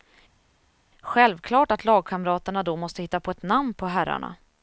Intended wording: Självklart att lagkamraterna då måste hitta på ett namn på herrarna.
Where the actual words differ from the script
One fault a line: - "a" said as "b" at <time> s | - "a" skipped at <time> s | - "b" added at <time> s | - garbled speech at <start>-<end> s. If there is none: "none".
none